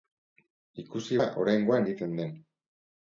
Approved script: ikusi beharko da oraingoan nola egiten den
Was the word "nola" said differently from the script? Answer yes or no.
yes